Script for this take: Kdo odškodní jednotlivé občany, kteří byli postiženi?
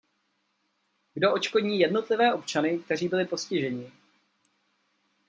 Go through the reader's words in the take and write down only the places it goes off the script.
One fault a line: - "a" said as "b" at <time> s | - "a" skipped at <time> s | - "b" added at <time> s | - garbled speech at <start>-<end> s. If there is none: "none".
none